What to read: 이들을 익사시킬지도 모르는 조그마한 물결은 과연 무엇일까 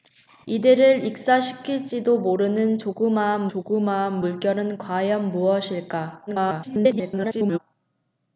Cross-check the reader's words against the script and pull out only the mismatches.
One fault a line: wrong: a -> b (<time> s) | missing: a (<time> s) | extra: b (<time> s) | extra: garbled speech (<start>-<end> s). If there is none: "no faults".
extra: 조그마한 (3.5 s)
extra: garbled speech (6.3-7.6 s)